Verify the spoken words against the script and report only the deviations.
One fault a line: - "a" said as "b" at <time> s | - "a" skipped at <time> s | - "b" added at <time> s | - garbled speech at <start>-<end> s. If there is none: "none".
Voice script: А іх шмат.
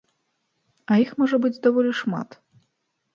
- "можа быць даволі" added at 1.2 s